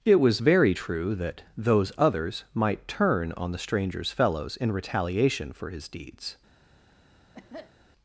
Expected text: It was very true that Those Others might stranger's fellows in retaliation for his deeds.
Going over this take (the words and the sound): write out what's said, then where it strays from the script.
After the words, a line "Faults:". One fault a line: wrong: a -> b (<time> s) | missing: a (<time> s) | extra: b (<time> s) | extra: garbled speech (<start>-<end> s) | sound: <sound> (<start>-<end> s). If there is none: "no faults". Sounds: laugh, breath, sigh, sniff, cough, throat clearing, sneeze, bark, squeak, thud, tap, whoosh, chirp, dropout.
It was very true that Those Others might turn on the stranger's fellows in retaliation for his deeds.
Faults:
extra: turn on the (2.9 s)
sound: cough (7.3-7.7 s)